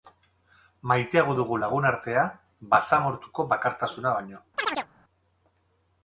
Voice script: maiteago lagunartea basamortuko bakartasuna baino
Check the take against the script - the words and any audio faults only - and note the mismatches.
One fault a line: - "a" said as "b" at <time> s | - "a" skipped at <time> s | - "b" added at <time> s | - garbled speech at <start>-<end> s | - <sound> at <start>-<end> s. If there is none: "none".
- "dugu" added at 1.4 s
- chirp at 4.6-4.9 s